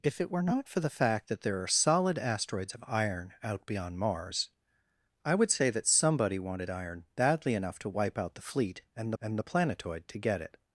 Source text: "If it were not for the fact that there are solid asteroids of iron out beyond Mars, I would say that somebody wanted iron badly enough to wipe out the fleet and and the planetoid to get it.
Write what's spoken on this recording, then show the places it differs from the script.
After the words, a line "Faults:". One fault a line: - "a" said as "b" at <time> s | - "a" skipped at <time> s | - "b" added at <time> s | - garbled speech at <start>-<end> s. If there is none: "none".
"If it were not for the fact that there are solid asteroids of iron out beyond Mars, I would say that somebody wanted iron badly enough to wipe out the fleet and and the planetoid to get it.
Faults:
none